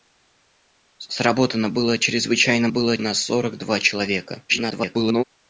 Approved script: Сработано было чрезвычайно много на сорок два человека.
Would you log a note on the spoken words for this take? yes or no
yes